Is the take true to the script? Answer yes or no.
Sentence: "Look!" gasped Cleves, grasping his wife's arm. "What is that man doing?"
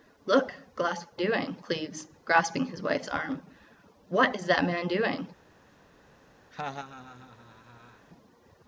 no